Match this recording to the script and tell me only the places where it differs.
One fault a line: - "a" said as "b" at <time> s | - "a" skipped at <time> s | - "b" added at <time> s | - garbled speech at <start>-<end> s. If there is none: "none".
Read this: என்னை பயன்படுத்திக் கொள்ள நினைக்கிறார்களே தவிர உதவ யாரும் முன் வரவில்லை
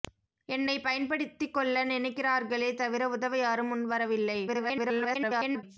- garbled speech at 4.5-5.6 s